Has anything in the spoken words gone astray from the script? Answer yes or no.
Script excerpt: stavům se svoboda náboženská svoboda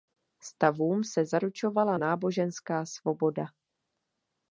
yes